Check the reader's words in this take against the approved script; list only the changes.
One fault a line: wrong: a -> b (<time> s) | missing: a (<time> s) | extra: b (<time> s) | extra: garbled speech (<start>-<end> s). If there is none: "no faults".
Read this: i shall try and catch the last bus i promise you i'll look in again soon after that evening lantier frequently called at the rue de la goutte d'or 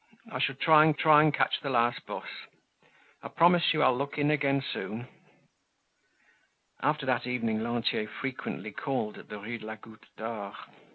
extra: try and (0.9 s)